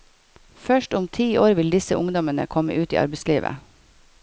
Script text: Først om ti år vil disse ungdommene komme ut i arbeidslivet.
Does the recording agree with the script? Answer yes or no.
yes